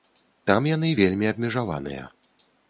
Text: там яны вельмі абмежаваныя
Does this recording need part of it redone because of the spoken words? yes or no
no